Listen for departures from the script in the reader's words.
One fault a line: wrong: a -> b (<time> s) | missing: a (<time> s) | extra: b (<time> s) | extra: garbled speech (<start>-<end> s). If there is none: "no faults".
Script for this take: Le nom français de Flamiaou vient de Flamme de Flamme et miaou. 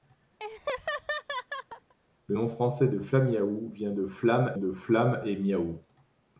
no faults